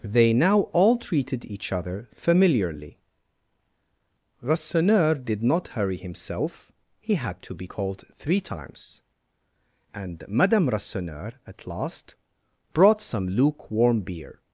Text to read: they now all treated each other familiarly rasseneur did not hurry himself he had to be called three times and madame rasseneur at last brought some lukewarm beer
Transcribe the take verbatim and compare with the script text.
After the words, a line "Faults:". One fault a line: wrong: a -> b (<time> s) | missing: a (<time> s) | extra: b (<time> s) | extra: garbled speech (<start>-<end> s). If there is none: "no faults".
they now all treated each other familiarly rasseneur did not hurry himself he had to be called three times and madame rasseneur at last brought some lukewarm beer
Faults:
no faults